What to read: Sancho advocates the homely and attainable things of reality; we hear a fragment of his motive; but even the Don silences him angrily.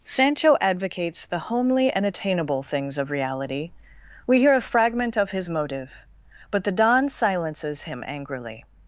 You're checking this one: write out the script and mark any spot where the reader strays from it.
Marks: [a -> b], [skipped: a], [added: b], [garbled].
Sancho advocates the homely and attainable things of reality; we hear a fragment of his motive; but [skipped: even] the Don silences him angrily.